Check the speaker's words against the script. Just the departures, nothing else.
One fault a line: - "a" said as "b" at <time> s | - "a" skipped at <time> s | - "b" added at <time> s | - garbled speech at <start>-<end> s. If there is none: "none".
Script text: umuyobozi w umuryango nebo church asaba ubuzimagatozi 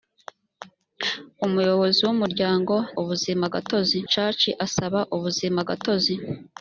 - "nebo" said as "ubuzimagatozi" at 3.0 s